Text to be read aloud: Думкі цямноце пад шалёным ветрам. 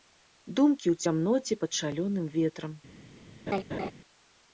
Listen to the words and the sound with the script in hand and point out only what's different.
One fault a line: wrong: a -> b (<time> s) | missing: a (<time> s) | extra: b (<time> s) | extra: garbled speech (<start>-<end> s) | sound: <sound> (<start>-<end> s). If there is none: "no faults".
extra: ў (0.9 s)
sound: laugh (3.5-3.9 s)